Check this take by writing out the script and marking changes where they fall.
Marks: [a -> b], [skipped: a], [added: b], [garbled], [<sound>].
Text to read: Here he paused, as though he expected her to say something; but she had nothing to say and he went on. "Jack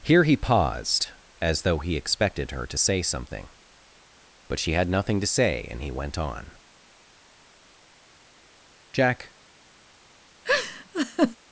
Here he paused, as though he expected her to say something; but she had nothing to say and he went on. "Jack [laugh]